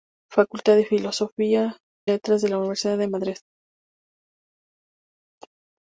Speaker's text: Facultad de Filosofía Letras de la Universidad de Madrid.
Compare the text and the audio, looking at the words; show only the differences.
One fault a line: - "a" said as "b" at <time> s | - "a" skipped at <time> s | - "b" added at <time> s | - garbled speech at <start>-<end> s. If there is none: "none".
none